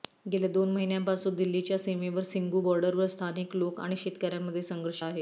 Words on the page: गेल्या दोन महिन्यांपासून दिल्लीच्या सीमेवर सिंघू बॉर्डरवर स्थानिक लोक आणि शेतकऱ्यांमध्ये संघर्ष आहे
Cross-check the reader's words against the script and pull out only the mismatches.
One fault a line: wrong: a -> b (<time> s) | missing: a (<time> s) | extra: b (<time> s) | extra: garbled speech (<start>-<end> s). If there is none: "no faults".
no faults